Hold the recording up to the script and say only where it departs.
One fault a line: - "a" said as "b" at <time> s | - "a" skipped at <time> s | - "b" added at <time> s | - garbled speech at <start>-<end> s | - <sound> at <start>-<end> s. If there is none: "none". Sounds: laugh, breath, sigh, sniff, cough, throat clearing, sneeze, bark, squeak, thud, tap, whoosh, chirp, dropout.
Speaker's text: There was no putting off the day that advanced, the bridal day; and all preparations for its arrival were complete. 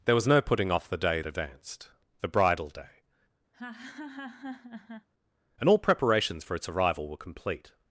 - "that" skipped at 1.2 s
- laugh at 3.5-5.1 s